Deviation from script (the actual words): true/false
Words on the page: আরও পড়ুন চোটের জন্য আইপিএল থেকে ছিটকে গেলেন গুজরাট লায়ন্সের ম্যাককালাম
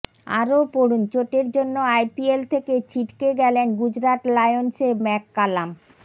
false